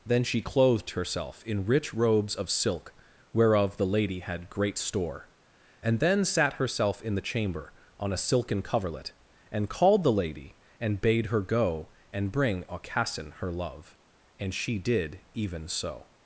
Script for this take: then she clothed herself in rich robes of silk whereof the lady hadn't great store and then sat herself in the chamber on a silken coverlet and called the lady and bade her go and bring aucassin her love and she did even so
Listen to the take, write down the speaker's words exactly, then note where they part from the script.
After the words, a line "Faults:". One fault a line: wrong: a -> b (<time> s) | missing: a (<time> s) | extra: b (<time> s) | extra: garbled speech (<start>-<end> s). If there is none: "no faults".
then she clothed herself in rich robes of silk whereof the lady had great store and then sat herself in the chamber on a silken coverlet and called the lady and bade her go and bring aucassin her love and she did even so
Faults:
wrong: hadn't -> had (4.2 s)